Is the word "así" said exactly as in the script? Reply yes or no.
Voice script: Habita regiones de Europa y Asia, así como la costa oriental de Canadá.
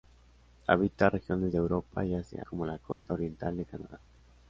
no